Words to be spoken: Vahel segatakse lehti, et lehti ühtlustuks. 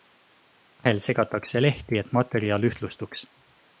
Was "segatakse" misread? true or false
false